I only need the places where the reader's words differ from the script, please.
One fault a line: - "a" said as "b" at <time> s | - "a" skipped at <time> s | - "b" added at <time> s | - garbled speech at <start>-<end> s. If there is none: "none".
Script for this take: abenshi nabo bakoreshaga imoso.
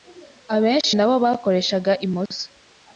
none